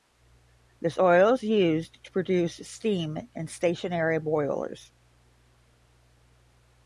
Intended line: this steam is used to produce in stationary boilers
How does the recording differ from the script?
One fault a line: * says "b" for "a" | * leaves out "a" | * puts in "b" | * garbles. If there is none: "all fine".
* says "oil" for "steam"
* puts in "steam"